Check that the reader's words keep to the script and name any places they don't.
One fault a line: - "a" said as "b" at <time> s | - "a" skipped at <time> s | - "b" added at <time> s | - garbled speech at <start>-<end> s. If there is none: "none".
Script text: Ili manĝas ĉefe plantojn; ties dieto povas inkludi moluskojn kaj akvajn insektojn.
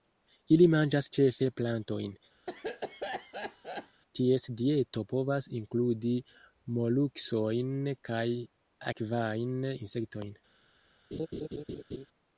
none